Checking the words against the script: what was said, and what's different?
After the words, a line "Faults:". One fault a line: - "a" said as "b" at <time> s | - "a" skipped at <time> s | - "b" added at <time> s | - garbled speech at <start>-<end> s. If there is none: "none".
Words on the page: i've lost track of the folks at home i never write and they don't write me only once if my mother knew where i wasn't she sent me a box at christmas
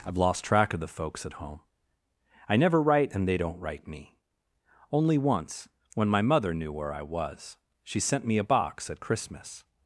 i've lost track of the folks at home i never write and they don't write me only once when my mother knew where i was she sent me a box at christmas
Faults:
- "if" said as "when" at 6.0 s
- "wasn't" said as "was" at 7.0 s